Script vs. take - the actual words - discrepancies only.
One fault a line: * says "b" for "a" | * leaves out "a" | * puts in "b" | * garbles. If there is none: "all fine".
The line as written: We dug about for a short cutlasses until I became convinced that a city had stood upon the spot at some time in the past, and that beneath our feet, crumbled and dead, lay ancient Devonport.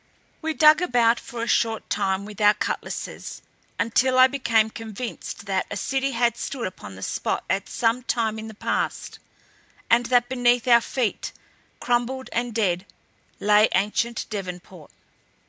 * puts in "time with our"